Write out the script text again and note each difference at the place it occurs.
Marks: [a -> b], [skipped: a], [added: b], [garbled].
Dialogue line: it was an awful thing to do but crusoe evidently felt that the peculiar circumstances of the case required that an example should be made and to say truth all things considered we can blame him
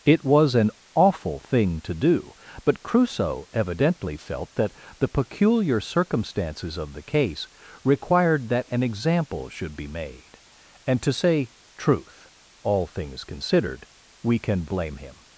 it was an awful thing to do but crusoe evidently felt that the peculiar circumstances of the case required that an example should be made and to say truth all things considered we can blame him